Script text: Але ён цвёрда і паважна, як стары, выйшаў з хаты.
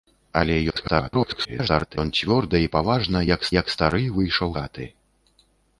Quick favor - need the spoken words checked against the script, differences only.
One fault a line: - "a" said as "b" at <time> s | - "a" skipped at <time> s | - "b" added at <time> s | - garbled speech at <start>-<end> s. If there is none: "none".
- garbled speech at 0.7-2.0 s
- "як" added at 3.6 s
- "з" skipped at 4.5 s